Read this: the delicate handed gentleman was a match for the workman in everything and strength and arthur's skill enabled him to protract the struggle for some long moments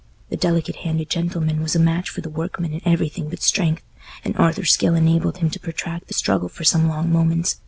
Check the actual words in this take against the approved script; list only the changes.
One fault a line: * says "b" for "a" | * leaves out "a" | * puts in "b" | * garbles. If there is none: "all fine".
* says "but" for "and"